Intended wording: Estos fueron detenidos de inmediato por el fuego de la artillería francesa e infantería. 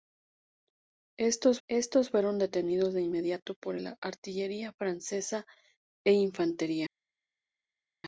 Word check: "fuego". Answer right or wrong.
wrong